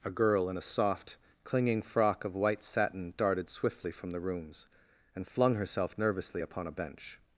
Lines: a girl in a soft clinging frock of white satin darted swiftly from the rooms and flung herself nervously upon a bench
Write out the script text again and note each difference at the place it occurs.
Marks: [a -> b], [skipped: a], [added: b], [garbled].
a girl in a soft clinging frock of white satin darted swiftly from the rooms and flung herself nervously upon a bench